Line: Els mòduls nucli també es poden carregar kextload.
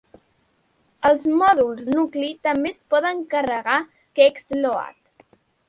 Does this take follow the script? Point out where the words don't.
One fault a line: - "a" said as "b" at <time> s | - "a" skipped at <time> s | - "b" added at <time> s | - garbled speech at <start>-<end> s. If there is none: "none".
none